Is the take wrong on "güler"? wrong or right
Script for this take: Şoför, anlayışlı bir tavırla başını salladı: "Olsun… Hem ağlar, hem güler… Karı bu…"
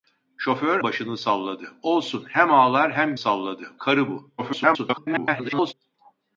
wrong